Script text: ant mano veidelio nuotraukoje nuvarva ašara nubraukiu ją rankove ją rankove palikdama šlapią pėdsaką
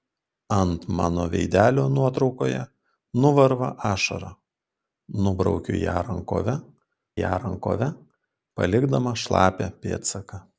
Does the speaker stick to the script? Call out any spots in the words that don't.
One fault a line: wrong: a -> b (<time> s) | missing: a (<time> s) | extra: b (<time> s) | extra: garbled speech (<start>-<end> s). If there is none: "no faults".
no faults